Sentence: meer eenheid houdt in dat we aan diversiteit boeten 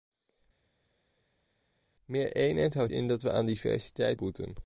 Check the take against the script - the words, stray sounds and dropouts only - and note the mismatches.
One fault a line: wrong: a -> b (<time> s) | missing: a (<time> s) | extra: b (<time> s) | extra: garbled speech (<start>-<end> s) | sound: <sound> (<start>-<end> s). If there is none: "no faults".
no faults